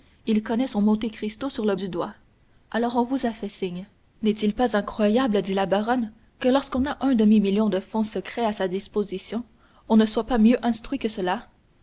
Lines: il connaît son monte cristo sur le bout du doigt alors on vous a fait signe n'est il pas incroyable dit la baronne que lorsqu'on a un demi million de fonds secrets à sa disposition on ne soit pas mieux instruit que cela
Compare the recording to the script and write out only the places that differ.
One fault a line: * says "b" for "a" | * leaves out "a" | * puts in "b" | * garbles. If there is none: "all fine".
* leaves out "bout"